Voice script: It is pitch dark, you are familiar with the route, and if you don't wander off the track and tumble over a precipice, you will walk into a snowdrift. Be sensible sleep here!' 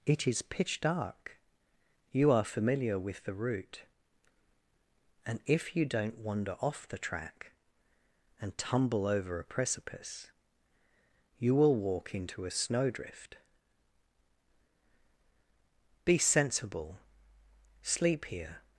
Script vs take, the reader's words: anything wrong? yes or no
no